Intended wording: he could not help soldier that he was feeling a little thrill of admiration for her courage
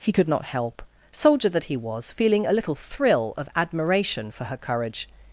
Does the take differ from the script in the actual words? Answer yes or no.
no